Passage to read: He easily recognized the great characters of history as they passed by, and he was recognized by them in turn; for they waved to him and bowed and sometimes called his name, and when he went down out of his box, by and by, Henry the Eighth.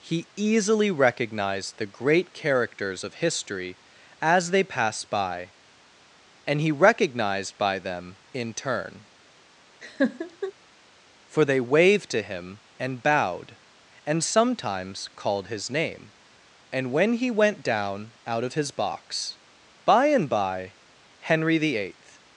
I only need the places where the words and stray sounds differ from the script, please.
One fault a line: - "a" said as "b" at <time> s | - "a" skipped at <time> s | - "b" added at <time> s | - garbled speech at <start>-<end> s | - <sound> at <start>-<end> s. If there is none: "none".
- "was" skipped at 6.7 s
- laugh at 9.8-10.5 s